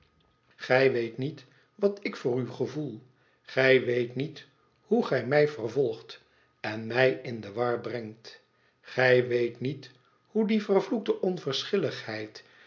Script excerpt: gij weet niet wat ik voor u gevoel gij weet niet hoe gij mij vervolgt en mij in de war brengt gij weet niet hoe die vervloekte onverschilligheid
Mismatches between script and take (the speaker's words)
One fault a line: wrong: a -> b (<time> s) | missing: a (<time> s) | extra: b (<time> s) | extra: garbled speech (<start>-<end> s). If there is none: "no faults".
no faults